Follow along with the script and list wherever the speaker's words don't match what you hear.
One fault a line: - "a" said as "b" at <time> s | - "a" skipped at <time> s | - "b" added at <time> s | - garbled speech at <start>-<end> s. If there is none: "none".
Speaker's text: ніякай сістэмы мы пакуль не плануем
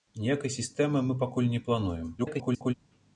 - garbled speech at 2.2-2.7 s